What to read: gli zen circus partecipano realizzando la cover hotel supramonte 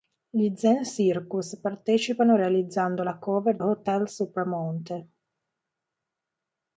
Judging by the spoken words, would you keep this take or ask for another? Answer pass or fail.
pass